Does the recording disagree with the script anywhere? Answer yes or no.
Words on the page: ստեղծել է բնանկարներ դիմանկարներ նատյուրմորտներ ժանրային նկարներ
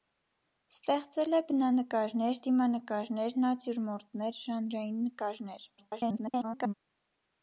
yes